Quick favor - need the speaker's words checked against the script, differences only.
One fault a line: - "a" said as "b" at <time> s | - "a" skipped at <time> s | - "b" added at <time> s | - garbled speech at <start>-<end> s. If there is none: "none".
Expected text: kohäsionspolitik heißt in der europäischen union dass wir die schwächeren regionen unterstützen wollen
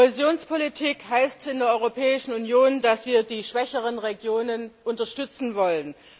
none